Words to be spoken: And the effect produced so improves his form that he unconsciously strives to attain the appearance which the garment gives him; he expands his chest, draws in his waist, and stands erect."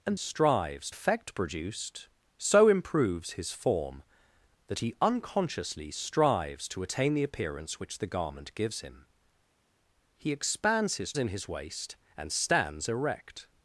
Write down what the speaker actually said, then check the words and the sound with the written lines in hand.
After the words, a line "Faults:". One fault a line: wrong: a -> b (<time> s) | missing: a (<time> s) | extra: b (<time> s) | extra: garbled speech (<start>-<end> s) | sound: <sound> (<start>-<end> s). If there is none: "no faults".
And strives effect produced so improves his form that he unconsciously strives to attain the appearance which the garment gives him; he expands his in his waist, and stands erect."
Faults:
wrong: the -> strives (0.1 s)
missing: chest draws (11.1 s)